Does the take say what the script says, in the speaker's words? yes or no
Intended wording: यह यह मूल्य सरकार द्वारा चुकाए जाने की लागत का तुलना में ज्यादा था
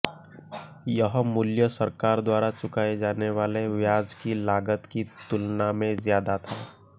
no